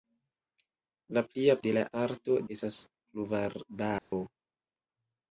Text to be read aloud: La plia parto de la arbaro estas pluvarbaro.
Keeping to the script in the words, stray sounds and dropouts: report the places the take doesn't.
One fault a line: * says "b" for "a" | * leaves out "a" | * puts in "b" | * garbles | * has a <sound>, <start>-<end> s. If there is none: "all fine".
* leaves out "parto"
* says "parto" for "arbaro"
* has a dropout, 4.0-4.1 s